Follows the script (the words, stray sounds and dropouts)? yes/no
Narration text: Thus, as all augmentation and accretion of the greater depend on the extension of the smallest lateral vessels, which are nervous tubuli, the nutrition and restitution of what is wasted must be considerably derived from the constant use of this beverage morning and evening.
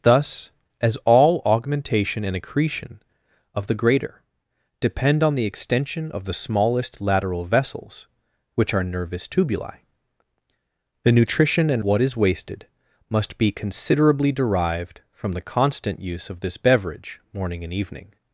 no